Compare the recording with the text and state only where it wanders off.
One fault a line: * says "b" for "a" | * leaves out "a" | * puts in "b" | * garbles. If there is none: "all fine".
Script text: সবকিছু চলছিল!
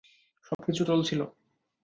all fine